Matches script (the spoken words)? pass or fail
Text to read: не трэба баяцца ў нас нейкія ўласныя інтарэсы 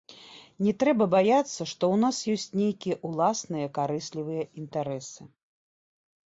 fail